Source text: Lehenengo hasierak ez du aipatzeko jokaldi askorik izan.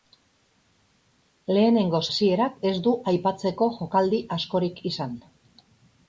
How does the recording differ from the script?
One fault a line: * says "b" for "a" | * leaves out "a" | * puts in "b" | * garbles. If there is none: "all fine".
all fine